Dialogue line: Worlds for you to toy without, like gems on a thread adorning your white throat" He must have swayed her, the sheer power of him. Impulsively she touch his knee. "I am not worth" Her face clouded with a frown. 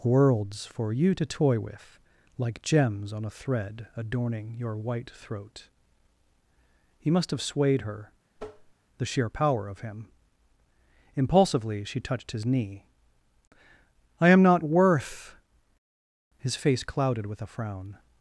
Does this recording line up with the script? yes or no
no